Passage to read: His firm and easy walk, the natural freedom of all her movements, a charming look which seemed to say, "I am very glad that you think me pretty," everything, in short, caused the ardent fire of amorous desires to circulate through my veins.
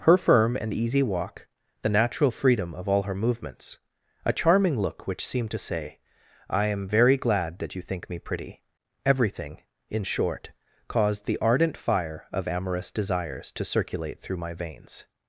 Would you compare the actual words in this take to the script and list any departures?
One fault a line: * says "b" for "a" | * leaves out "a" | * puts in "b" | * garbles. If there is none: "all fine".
* says "Her" for "His"